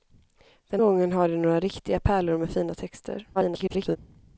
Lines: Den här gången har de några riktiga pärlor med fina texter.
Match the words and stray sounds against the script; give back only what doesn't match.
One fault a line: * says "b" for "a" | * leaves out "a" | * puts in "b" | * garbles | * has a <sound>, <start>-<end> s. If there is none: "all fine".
* leaves out "här"
* garbles